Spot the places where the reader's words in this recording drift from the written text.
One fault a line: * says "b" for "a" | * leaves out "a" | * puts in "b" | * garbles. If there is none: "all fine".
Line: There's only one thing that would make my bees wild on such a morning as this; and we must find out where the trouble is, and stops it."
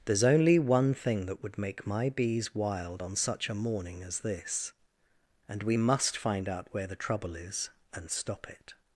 * says "stop" for "stops"